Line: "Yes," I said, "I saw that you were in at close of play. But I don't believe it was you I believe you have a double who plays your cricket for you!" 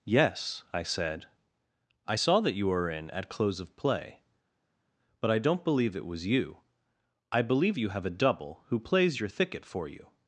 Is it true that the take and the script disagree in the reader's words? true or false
true